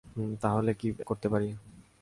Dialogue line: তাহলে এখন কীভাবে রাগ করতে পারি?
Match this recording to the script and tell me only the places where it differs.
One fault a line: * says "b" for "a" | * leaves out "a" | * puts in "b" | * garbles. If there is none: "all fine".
* leaves out "এখন কীভাবে রাগ"